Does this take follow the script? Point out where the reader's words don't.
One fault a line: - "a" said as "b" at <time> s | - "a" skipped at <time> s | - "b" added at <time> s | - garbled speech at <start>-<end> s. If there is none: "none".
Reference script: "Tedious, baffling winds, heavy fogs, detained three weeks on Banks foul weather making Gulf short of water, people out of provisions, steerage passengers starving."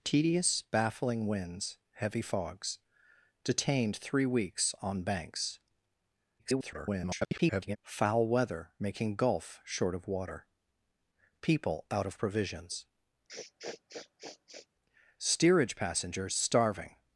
- garbled speech at 6.4-7.8 s